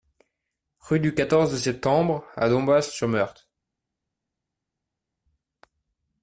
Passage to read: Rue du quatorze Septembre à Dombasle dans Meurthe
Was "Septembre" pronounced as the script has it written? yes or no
yes